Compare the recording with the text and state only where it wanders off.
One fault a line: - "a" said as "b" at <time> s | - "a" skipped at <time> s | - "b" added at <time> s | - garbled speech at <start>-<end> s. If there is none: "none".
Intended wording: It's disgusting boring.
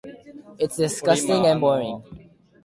- "and" added at 1.4 s